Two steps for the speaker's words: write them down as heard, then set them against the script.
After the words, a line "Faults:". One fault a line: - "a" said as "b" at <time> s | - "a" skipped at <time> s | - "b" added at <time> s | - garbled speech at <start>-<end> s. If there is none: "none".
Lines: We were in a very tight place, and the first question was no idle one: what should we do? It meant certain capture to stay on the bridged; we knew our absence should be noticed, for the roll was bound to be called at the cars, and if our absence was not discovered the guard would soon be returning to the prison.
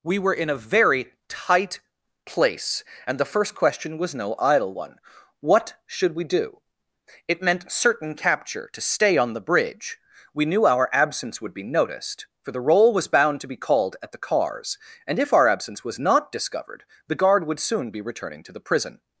We were in a very tight place, and the first question was no idle one: what should we do? It meant certain capture to stay on the bridge; we knew our absence would be noticed, for the roll was bound to be called at the cars, and if our absence was not discovered the guard would soon be returning to the prison.
Faults:
- "bridged" said as "bridge" at 9.5 s
- "should" said as "would" at 11.4 s